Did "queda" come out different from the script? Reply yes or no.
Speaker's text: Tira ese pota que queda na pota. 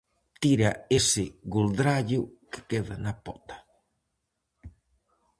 no